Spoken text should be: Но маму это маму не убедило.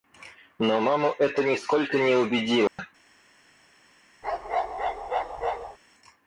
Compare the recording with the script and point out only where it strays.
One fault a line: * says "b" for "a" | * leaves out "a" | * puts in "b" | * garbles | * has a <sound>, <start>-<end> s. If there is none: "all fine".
* says "нисколько" for "маму"
* has a dropout, 2.7-2.8 s
* has a bark, 4.2-5.8 s